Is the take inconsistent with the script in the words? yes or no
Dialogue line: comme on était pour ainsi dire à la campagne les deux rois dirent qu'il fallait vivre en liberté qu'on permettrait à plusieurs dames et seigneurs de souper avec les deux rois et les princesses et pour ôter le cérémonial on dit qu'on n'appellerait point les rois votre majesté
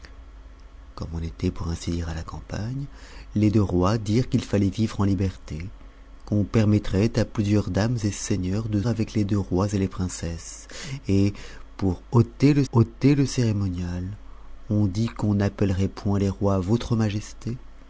yes